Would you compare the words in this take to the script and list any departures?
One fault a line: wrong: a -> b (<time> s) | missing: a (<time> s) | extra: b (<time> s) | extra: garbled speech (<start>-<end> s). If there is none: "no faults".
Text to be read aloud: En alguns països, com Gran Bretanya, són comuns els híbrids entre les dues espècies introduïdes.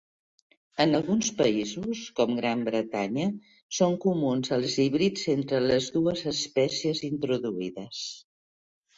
no faults